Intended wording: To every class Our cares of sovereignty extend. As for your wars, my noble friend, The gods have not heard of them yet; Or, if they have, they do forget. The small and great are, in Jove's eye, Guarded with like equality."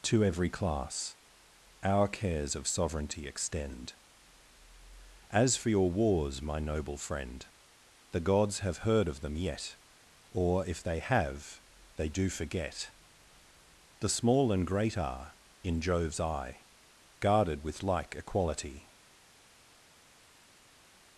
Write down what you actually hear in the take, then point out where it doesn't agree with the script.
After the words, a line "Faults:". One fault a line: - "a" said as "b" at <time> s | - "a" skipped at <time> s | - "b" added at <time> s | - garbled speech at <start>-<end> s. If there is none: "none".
To every class Our cares of sovereignty extend. As for your wars, my noble friend, The gods have heard of them yet; Or, if they have, they do forget. The small and great are, in Jove's eye, Guarded with like equality."
Faults:
- "not" skipped at 8.8 s